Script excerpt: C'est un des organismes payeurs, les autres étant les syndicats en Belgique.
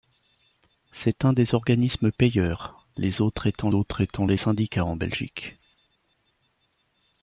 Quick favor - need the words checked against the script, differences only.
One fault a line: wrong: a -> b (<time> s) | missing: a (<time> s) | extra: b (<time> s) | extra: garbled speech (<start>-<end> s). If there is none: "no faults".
extra: autres étant (3.7 s)